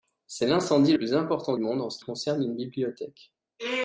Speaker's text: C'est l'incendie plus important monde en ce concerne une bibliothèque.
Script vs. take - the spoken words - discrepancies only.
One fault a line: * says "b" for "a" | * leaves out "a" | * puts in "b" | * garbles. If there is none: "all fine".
all fine